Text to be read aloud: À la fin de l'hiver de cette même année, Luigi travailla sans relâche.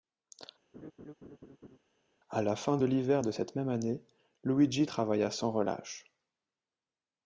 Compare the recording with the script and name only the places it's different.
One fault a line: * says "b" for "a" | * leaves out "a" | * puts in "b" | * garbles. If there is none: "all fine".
all fine